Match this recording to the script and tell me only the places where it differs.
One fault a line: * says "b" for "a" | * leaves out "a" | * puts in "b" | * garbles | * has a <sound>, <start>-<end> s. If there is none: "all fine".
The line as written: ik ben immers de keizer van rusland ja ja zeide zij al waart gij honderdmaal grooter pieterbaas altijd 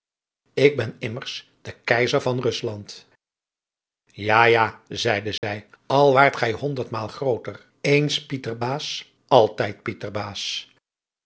* has a dropout, 5.4-5.4 s
* puts in "eens"